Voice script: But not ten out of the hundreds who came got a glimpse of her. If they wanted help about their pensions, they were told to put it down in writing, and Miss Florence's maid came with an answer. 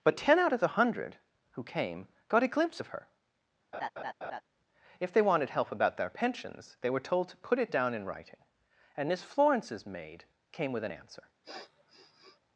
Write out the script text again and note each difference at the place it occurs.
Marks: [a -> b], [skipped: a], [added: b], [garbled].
But [skipped: not] ten out of the [hundreds -> hundred] who came got a glimpse of her. If they wanted help about their pensions, they were told to put it down in writing, and Miss Florence's maid came with an answer.